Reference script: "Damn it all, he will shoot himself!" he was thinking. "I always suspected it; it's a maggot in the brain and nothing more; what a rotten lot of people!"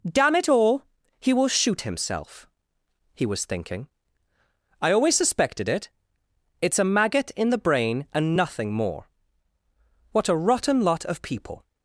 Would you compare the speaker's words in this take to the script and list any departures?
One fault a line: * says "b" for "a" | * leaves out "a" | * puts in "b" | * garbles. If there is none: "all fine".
all fine